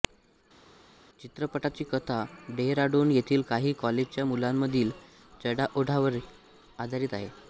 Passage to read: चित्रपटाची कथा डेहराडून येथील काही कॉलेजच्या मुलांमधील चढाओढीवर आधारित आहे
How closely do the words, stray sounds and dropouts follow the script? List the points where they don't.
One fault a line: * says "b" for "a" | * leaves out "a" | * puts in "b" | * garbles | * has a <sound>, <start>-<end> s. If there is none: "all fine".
all fine